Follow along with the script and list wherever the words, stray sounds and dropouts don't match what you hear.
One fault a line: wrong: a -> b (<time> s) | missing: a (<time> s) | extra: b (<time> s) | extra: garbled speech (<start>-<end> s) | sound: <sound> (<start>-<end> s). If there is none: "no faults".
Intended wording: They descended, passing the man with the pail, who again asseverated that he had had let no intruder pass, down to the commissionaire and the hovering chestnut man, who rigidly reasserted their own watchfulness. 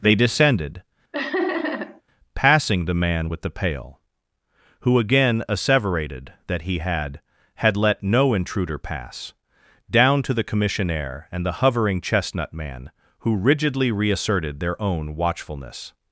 sound: laugh (1.1-2.0 s)